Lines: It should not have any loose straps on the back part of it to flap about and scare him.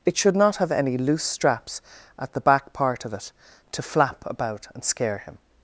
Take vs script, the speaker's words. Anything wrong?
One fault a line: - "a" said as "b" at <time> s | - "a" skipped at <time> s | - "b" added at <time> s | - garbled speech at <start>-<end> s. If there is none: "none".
- "on" said as "at" at 2.2 s